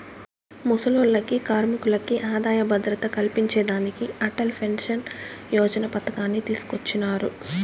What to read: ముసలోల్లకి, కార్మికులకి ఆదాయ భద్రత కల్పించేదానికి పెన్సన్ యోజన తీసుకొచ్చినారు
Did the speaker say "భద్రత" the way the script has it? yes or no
yes